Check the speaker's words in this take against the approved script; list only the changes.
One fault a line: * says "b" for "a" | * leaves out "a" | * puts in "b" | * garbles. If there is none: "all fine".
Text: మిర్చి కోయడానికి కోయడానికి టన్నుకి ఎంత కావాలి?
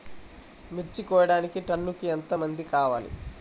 * leaves out "కోయడానికి"
* puts in "మంది"